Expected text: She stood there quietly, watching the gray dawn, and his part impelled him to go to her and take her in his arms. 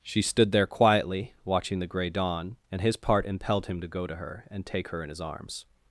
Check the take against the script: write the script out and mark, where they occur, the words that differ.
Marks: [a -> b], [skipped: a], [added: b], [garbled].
She stood there quietly, watching the gray dawn, and his part impelled him to go to her and take her in his arms.